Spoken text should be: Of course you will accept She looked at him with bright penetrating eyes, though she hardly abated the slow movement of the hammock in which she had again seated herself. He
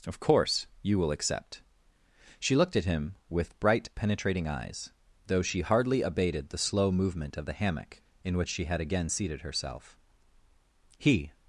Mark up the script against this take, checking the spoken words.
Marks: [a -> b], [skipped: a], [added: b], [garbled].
Of course you will accept She looked at him with bright penetrating eyes, though she hardly abated the slow movement of the hammock in which she had again seated herself. He